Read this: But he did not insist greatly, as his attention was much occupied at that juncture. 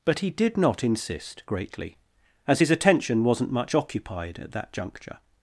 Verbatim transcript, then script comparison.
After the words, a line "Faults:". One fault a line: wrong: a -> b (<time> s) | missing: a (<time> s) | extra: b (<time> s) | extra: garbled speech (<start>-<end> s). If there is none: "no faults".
But he did not insist greatly, as his attention wasn't much occupied at that juncture.
Faults:
wrong: was -> wasn't (3.2 s)